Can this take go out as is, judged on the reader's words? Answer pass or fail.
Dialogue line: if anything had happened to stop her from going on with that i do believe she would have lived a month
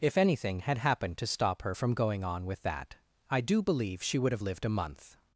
pass